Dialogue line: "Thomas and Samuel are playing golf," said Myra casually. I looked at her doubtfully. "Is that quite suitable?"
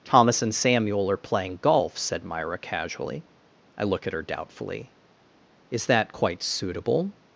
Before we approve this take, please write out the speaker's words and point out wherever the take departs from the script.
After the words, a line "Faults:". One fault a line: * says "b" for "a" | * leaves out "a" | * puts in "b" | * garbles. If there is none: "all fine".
"Thomas and Samuel are playing golf," said Myra casually. I look at her doubtfully. "Is that quite suitable?"
Faults:
* says "look" for "looked"